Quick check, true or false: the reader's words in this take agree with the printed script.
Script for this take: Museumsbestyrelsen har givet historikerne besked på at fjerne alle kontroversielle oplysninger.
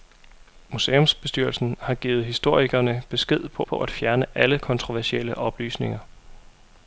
false